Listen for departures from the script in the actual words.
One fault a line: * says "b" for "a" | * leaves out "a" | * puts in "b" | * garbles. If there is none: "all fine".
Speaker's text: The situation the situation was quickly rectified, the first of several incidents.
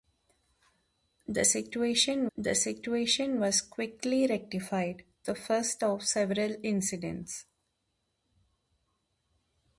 all fine